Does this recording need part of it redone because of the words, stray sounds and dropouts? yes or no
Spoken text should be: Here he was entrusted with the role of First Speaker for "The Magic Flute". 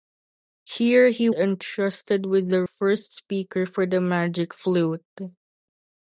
yes